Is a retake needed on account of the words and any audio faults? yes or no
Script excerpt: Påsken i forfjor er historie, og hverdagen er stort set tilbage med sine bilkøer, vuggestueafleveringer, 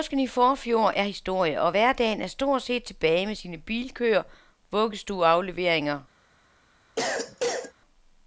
yes